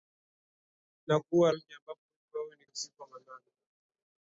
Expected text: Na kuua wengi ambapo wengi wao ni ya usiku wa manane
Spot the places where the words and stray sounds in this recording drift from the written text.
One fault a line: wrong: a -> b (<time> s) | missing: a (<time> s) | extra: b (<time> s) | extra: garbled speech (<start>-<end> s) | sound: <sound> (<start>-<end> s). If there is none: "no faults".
no faults